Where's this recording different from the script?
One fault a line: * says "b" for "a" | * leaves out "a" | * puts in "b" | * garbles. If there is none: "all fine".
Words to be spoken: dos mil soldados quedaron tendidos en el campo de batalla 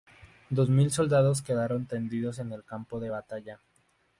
all fine